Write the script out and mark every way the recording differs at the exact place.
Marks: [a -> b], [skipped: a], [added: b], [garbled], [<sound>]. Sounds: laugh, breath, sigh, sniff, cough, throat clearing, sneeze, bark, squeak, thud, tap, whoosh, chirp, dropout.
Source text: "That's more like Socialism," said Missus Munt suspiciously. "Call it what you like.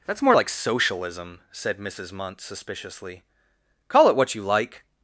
"That's more like Socialism," said Missus Munt suspiciously. "Call it what you like.